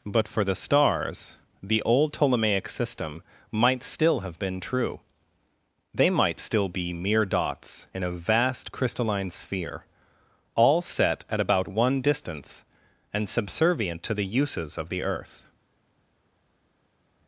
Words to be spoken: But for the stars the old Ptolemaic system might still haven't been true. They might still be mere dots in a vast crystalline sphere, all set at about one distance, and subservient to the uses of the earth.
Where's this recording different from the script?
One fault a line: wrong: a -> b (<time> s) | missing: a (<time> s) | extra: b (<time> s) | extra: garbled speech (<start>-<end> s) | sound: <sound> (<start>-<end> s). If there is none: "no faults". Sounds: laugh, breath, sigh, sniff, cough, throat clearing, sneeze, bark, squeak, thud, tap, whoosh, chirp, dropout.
wrong: haven't -> have (4.2 s)